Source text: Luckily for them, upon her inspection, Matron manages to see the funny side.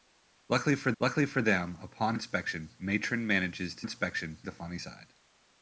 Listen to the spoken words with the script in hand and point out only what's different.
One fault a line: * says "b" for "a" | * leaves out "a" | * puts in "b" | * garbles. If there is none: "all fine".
* puts in "luckily for"
* leaves out "her"
* says "inspection" for "see"